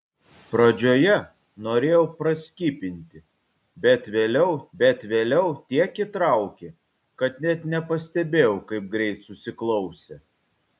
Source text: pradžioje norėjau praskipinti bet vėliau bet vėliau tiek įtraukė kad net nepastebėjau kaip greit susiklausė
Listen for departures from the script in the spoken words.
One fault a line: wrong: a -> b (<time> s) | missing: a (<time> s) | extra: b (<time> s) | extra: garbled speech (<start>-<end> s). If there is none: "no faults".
no faults